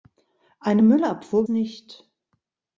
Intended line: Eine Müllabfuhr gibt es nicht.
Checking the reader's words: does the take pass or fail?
fail